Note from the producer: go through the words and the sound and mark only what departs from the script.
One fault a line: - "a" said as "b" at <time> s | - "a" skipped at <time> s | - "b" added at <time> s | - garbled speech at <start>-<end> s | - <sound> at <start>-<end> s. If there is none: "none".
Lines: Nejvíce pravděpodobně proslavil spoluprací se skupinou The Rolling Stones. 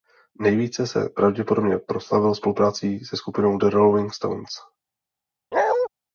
- "se" added at 0.9 s
- bark at 5.5-5.9 s